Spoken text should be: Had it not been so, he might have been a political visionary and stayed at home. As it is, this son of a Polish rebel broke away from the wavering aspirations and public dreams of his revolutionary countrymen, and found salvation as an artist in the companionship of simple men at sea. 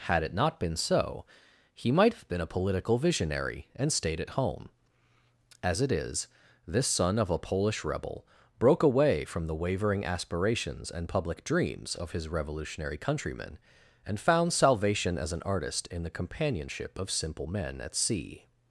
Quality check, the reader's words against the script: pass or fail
pass